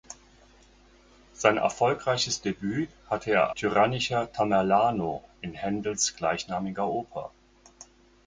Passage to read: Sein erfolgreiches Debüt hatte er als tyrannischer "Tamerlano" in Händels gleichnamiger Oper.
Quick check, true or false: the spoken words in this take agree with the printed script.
false